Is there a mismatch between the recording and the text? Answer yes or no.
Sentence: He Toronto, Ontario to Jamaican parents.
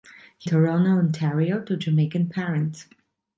no